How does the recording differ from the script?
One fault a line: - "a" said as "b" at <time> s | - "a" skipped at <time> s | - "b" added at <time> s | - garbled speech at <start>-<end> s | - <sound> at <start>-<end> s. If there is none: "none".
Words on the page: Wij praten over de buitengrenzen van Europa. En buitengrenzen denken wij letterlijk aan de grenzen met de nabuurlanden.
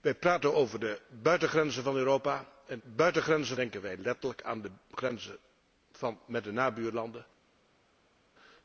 none